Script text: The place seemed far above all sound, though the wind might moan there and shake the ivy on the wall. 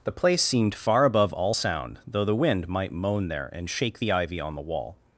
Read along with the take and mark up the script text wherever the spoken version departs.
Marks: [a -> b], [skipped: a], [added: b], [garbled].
The place seemed far above all sound, though the wind might moan there and shake the ivy on the wall.